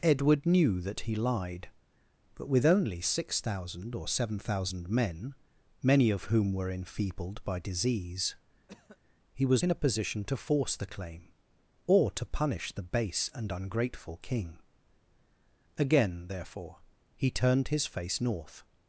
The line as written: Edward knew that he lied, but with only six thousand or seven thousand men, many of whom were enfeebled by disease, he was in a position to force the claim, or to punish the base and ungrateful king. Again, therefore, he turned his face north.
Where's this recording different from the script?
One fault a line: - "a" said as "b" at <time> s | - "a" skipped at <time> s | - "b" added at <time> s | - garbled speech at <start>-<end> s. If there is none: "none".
none